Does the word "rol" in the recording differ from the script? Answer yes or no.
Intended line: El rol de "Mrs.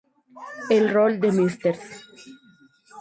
no